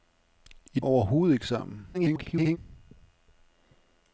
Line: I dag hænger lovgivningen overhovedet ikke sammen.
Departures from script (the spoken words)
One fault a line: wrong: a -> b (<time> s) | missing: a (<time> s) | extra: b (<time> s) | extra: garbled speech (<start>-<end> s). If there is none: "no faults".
missing: dag hænger lovgivningen (0.8 s)
extra: garbled speech (1.9-2.6 s)